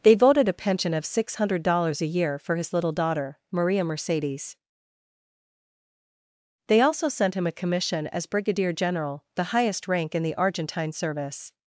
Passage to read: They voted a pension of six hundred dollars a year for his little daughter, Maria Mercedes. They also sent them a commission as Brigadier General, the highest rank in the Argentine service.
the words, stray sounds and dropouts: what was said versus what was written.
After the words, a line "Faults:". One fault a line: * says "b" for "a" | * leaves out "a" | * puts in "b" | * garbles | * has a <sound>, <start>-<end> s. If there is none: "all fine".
They voted a pension of six hundred dollars a year for his little daughter, Maria Mercedes. They also sent him a commission as Brigadier General, the highest rank in the Argentine service.
Faults:
* says "him" for "them"